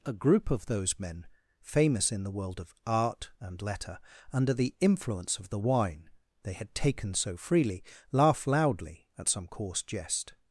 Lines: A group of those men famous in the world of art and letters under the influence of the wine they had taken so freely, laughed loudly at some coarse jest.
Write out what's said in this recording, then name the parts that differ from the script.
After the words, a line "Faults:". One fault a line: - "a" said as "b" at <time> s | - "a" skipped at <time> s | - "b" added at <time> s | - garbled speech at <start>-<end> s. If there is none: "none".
A group of those men famous in the world of art and letter under the influence of the wine they had taken so freely, laugh loudly at some coarse jest.
Faults:
- "letters" said as "letter" at 3.6 s
- "laughed" said as "laugh" at 8.1 s